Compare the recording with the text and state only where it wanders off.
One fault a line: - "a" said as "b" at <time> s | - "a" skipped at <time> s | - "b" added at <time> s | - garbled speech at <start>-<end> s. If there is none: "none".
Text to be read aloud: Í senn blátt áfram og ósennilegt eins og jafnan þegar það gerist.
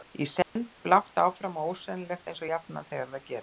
none